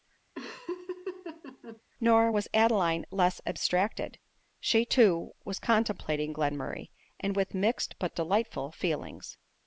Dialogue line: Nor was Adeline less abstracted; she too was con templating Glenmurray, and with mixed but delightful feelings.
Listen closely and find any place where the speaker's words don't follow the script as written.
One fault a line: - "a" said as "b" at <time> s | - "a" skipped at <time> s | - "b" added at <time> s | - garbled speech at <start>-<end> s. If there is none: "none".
none